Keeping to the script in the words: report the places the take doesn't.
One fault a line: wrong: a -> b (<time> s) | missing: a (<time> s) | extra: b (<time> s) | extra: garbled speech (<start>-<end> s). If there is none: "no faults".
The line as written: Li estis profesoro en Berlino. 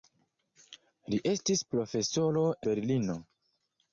missing: en (2.5 s)